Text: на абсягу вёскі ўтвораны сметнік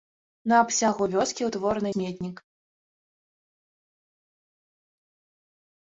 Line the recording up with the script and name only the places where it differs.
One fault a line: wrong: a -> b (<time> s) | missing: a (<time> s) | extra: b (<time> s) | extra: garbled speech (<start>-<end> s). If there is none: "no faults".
no faults